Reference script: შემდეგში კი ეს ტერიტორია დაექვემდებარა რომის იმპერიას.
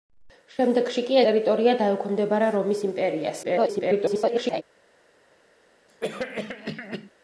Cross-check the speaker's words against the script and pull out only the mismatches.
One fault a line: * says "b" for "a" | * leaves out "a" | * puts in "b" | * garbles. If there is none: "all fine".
* leaves out "ეს"
* garbles